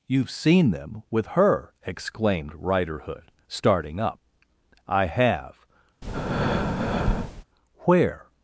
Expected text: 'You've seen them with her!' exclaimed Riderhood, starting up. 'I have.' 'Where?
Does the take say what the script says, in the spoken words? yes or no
yes